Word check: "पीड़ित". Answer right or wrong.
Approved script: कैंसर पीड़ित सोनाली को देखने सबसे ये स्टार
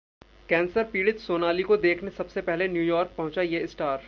right